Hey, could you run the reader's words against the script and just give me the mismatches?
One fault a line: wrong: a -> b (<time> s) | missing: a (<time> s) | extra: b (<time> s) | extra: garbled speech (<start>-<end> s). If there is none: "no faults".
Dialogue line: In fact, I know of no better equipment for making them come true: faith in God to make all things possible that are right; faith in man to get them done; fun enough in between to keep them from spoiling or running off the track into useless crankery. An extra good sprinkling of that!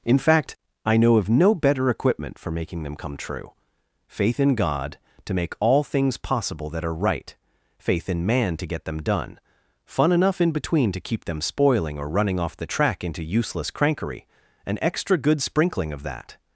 missing: from (11.4 s)